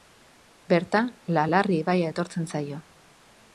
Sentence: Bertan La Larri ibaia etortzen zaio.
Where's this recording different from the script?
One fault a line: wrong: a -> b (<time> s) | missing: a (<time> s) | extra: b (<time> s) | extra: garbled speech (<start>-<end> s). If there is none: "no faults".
no faults